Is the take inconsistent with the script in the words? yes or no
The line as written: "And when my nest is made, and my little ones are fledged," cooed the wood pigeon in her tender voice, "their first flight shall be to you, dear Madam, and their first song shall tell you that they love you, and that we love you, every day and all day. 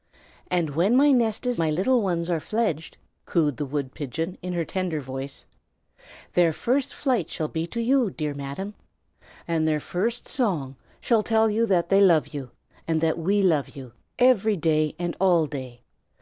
yes